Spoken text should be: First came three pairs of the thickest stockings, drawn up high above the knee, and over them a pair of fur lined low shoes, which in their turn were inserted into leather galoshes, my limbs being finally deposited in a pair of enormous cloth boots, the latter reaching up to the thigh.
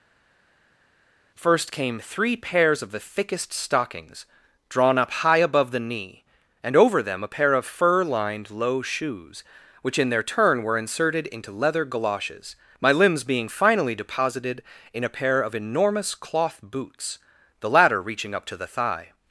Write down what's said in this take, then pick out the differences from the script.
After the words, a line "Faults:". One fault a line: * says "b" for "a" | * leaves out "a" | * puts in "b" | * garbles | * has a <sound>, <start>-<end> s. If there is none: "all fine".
First came three pairs of the thickest stockings, drawn up high above the knee, and over them a pair of fur lined low shoes, which in their turn were inserted into leather galoshes, my limbs being finally deposited in a pair of enormous cloth boots, the latter reaching up to the thigh.
Faults:
all fine